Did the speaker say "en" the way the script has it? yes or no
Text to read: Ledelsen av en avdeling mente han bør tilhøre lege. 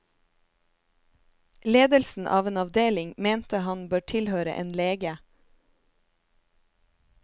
yes